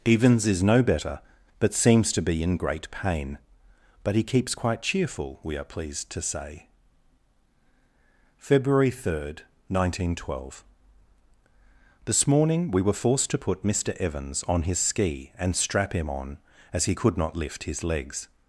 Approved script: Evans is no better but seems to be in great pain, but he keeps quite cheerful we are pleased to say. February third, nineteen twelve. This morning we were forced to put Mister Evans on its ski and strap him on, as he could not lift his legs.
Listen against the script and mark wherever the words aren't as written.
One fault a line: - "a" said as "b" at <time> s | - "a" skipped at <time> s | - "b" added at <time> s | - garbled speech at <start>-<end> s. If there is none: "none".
- "its" said as "his" at 14.6 s